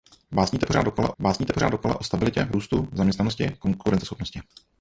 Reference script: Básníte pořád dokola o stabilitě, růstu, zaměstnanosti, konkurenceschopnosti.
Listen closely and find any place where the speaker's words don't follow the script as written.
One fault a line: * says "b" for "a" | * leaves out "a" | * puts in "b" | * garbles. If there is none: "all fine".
* puts in "básníte pořád dokola"